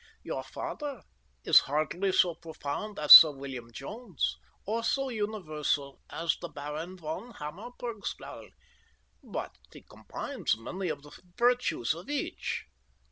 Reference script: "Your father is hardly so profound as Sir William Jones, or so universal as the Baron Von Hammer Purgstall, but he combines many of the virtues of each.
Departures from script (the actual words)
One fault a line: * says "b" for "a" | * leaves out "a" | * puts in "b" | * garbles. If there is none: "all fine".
all fine